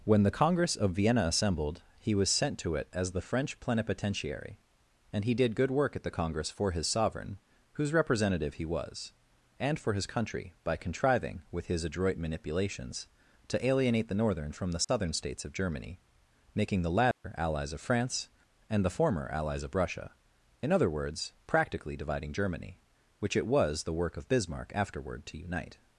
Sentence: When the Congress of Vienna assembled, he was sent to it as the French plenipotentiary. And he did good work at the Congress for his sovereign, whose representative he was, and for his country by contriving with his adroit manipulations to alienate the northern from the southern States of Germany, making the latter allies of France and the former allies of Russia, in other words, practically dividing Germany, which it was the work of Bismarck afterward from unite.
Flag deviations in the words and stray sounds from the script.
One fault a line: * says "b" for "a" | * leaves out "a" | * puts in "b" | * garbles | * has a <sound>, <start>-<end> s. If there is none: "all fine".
* has a dropout, 14.8-14.9 s
* has a dropout, 17.1-17.2 s
* says "to" for "from"